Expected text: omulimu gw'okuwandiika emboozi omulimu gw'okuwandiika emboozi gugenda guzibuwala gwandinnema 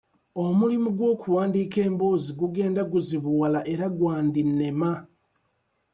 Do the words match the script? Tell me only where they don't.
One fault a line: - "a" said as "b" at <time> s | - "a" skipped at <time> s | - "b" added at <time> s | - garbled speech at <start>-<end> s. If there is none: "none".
- "omulimu gw'okuwandiika emboozi" skipped at 2.3 s
- "era" added at 3.7 s